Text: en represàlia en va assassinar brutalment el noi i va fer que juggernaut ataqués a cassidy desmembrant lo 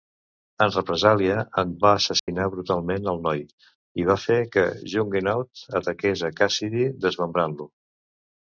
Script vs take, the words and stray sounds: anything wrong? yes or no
yes